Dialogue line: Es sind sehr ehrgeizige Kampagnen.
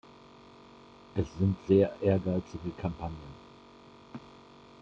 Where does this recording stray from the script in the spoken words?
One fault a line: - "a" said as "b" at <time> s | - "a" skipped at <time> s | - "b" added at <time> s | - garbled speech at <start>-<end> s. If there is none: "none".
none